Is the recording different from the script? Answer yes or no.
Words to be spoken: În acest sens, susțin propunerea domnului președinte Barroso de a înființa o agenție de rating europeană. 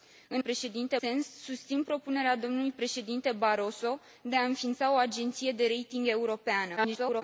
yes